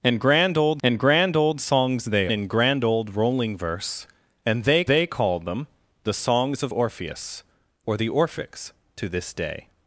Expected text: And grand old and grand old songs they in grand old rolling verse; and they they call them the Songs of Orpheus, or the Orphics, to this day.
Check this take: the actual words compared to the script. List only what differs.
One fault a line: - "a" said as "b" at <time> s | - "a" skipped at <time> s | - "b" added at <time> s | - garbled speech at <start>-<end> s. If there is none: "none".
none